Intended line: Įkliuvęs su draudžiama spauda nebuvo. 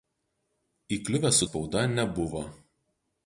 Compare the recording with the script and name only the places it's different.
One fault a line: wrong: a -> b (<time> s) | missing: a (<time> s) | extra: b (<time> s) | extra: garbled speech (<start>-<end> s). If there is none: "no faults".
missing: draudžiama (1.5 s)